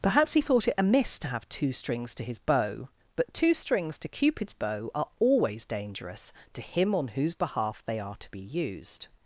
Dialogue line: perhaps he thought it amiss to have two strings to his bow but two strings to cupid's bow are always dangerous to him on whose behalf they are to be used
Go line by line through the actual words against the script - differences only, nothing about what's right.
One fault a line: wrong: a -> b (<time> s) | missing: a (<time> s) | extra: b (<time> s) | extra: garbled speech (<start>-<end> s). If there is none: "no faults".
no faults